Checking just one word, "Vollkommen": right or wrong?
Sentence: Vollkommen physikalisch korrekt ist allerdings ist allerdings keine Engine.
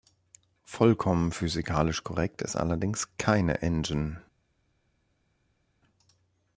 right